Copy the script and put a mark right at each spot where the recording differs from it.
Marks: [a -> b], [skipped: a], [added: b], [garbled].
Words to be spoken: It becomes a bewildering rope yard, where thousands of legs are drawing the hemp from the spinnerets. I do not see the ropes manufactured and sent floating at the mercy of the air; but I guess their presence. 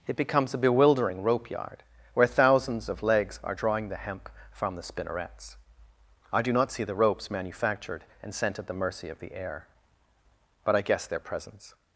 It becomes a bewildering rope yard, where thousands of legs are drawing the hemp from the spinnerets. I do not see the ropes manufactured and sent [skipped: floating] at the mercy of the air; but I guess their presence.